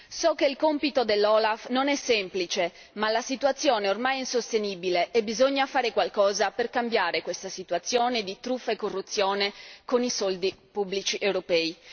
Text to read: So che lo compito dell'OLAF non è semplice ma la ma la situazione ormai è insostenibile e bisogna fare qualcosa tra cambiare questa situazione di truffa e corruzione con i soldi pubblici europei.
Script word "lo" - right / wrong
wrong